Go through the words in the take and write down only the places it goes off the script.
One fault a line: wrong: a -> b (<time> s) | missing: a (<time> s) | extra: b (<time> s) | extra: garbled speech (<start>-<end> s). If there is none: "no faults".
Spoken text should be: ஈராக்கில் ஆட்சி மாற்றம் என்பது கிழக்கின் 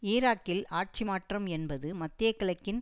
extra: மத்திய (1.9 s)